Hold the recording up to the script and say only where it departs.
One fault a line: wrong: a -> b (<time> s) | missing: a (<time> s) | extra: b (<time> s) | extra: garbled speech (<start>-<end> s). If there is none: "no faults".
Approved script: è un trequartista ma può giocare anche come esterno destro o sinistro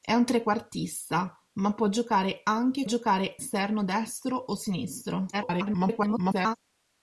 wrong: come -> giocare (2.8 s)
extra: garbled speech (5.3-6.6 s)